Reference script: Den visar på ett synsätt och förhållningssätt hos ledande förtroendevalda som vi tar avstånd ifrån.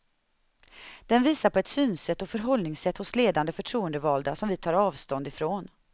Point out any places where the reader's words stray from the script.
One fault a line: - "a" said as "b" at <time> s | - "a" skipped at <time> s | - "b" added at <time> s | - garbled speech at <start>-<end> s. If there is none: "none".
none